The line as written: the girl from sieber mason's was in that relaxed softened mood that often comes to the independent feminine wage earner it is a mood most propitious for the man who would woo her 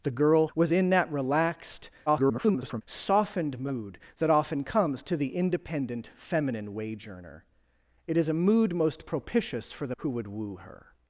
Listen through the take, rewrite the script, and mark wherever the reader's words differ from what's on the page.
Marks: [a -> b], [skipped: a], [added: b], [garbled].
the girl [skipped: from sieber mason's] was in that relaxed [garbled] softened mood that often comes to the independent feminine wage earner it is a mood most propitious for the [skipped: man] who would woo her